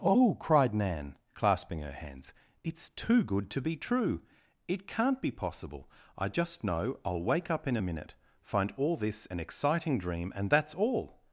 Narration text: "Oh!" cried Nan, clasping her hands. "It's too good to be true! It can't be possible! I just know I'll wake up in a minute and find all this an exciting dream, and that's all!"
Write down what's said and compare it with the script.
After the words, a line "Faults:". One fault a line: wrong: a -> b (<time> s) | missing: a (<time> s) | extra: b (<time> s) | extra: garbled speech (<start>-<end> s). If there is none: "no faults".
"Oh!" cried Nan, clasping her hands. "It's too good to be true! It can't be possible! I just know I'll wake up in a minute find all this an exciting dream, and that's all!"
Faults:
missing: and (8.1 s)